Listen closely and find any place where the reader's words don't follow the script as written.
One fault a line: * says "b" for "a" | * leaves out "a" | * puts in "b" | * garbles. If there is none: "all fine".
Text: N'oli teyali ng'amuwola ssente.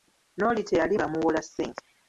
all fine